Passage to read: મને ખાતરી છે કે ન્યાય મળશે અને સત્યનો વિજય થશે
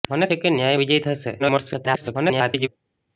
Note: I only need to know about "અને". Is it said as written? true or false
false